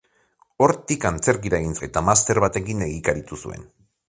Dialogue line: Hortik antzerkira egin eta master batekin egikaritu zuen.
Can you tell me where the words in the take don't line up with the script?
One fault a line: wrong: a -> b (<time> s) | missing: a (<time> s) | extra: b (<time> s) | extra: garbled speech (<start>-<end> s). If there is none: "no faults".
no faults